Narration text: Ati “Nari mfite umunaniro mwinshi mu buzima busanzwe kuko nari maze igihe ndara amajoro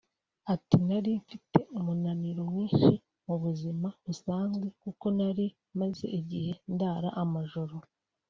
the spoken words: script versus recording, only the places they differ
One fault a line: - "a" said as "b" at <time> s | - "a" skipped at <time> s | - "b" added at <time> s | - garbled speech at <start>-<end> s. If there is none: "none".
none